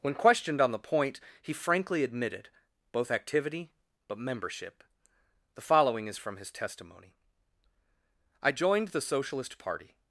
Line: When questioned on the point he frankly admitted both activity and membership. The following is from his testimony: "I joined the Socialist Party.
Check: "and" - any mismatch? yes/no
yes